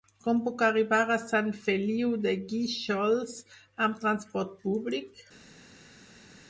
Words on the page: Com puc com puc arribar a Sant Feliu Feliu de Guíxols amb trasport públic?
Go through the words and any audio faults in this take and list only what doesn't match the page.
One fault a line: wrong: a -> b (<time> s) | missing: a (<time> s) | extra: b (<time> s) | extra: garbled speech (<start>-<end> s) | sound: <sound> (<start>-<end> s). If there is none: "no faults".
missing: com puc (0.6 s)
missing: Feliu (2.1 s)